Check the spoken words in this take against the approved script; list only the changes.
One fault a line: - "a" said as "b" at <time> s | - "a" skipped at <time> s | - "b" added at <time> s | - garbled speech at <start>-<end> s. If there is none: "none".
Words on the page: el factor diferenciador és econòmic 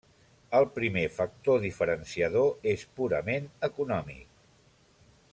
- "primer" added at 0.8 s
- "purament" added at 3.0 s